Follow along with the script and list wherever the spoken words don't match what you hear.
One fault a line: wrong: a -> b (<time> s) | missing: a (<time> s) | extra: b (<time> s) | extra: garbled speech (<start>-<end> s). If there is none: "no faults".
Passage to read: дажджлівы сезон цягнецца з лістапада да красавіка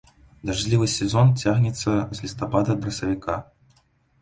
missing: да (2.8 s)